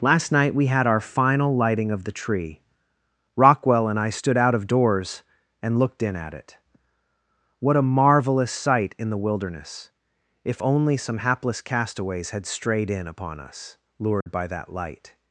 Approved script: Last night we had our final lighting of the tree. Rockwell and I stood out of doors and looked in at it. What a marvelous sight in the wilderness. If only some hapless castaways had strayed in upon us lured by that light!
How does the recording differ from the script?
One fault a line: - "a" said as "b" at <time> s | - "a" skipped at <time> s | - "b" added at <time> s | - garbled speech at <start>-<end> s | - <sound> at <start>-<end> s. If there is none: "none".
- dropout at 14.2-14.3 s